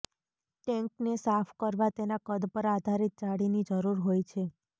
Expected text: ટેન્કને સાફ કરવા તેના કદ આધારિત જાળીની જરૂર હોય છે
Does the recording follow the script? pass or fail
fail